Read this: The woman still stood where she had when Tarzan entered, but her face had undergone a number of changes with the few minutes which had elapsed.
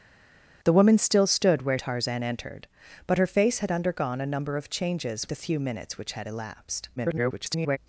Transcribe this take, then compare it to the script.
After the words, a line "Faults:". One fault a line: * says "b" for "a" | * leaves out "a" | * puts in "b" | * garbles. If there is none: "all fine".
The woman still stood where Tarzan entered, but her face had undergone a number of changes the few minutes which had elapsed. [garbled]
Faults:
* leaves out "she had when"
* leaves out "with"
* garbles